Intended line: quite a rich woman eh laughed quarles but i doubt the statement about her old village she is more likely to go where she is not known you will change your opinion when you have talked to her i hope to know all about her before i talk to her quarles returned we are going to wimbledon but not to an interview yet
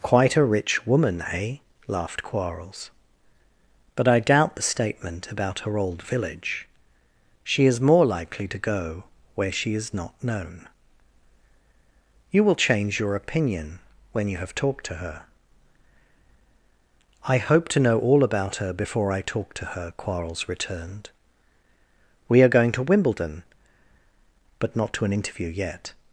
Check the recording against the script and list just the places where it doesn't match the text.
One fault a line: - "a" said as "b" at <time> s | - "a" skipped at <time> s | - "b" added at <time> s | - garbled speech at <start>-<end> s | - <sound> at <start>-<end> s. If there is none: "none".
none